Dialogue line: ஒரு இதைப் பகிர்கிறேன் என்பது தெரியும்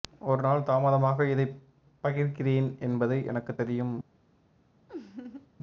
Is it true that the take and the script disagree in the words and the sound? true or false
true